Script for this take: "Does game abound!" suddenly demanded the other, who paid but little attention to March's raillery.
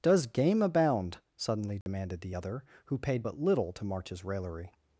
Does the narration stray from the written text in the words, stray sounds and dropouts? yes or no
yes